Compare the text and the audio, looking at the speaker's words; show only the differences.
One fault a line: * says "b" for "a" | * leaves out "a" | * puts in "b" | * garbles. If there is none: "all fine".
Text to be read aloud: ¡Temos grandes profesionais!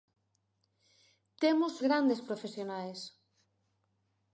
all fine